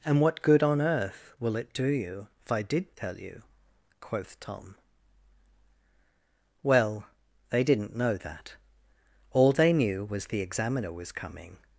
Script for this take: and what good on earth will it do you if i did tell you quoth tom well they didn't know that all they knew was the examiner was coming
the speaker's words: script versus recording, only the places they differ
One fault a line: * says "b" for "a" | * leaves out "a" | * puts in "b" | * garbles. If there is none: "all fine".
all fine